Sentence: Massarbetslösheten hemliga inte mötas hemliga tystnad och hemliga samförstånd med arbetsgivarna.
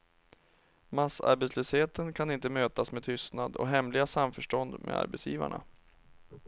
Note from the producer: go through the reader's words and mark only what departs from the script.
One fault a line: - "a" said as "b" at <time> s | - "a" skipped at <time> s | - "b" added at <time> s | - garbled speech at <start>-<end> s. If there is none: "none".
- "hemliga" said as "kan" at 2.1 s
- "hemliga" said as "med" at 2.9 s